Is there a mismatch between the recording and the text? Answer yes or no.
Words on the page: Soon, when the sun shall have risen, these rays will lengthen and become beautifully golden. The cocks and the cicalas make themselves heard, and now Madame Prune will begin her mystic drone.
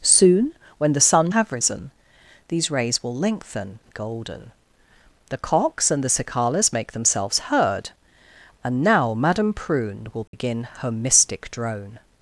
yes